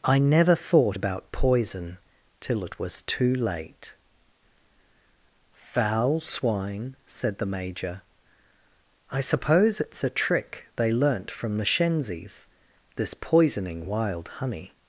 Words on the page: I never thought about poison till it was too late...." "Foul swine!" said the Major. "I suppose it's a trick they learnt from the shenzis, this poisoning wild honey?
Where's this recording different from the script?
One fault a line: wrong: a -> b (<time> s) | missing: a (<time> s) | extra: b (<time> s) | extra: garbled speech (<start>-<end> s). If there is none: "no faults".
no faults